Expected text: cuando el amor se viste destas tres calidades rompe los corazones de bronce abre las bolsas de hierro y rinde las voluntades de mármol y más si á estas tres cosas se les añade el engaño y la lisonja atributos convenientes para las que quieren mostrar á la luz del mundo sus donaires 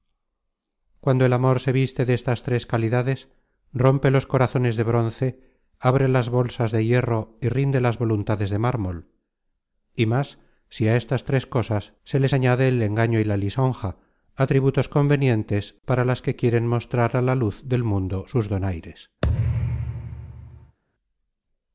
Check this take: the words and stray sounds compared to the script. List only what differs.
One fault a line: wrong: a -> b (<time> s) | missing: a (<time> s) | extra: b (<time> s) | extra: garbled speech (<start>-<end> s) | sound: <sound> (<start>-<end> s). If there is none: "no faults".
sound: thud (19.2-20.8 s)